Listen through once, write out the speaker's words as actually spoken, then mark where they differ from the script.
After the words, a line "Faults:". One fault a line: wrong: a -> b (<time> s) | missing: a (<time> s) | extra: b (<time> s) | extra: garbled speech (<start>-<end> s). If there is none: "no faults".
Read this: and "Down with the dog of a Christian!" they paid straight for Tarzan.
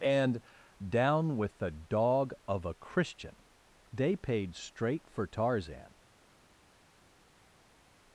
and "Down with the dog of a Christian!" they paid straight for Tarzan.
Faults:
no faults